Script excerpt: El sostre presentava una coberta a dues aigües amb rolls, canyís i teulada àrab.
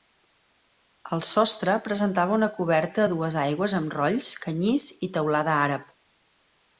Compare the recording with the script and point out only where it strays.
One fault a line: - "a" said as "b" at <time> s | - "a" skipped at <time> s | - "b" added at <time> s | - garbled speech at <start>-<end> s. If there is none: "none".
none